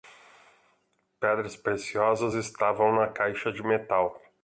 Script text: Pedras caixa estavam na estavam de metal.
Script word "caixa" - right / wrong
wrong